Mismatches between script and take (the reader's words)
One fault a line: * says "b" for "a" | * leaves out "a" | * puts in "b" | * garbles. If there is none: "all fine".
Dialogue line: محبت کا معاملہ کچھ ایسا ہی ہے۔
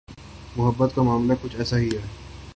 all fine